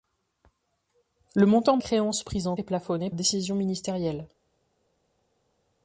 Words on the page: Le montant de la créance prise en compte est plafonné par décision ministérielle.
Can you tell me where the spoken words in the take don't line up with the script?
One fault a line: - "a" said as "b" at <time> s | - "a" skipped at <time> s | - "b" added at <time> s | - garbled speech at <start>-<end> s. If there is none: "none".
- "de la" skipped at 1.8 s
- "compte" skipped at 2.6 s
- "par" skipped at 3.1 s